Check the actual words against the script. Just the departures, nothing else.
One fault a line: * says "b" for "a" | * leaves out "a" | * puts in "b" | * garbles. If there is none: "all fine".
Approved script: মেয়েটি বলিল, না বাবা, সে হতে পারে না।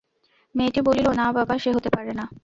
all fine